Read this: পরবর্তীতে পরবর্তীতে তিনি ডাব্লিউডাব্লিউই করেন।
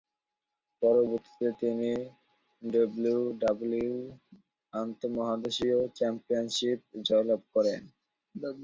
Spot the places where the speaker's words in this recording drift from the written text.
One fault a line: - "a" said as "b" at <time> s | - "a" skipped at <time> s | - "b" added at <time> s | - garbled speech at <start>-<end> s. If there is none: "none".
- "পরবর্তীতে" skipped at 1.5 s
- "আন্তঃমহাদেশীয় চ্যাম্পিয়নশিপ জয়লাভ" added at 4.7 s